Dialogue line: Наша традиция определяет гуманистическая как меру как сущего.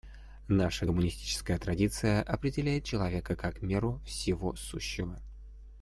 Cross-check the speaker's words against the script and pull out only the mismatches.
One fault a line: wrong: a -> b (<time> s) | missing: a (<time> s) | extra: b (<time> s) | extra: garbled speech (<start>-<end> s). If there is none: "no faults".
extra: гуманистическая (0.8 s)
wrong: гуманистическая -> человека (2.8 s)
wrong: как -> всего (4.0 s)